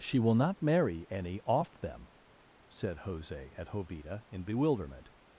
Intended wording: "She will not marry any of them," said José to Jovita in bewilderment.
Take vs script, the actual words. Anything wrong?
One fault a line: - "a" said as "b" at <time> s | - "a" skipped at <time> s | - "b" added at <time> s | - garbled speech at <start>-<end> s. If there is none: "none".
- "of" said as "off" at 1.4 s
- "to" said as "at" at 3.5 s